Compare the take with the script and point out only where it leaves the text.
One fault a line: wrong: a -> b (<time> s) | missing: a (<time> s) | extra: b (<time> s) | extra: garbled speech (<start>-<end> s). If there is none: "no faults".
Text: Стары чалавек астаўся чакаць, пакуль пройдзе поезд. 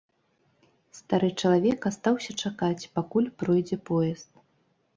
no faults